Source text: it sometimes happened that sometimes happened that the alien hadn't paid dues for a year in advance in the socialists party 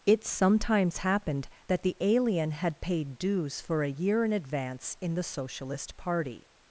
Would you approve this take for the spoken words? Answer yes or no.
no